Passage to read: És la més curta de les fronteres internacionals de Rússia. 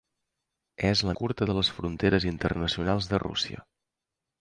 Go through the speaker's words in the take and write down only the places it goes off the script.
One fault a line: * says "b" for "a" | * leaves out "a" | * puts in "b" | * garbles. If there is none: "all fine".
* leaves out "més"